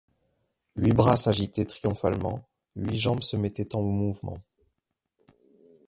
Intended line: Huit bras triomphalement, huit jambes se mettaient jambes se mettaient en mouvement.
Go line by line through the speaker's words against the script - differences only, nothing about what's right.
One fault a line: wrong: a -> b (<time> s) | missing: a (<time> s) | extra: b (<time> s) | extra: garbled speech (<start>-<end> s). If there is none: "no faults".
extra: s'agitaient (1.2 s)
missing: jambes se mettaient (3.8 s)